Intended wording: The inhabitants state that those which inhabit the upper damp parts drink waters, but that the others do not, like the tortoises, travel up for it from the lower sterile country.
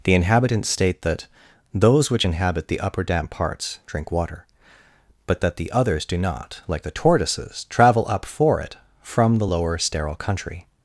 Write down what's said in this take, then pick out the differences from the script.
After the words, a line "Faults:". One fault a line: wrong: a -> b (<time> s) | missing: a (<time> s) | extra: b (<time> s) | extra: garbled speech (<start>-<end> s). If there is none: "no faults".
The inhabitants state that those which inhabit the upper damp parts drink water, but that the others do not, like the tortoises, travel up for it from the lower sterile country.
Faults:
wrong: waters -> water (4.1 s)